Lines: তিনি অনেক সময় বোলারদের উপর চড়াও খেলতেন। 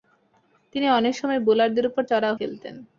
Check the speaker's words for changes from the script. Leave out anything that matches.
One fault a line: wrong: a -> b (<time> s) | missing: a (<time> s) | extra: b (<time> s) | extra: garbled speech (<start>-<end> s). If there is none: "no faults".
no faults